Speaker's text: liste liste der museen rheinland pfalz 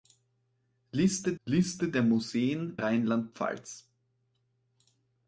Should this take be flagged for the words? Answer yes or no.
no